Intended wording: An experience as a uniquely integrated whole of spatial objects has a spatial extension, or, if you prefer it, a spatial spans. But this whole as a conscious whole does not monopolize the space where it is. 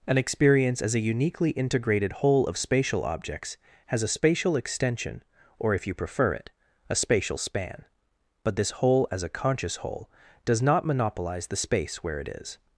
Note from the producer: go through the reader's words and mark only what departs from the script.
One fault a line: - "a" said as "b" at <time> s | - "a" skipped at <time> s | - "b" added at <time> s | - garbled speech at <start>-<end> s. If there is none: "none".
- "spans" said as "span" at 7.4 s